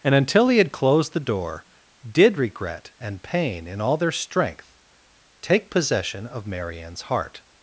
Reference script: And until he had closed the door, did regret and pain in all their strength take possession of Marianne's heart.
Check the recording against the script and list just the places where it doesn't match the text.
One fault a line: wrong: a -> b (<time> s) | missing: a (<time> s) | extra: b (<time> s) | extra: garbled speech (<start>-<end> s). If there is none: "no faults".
no faults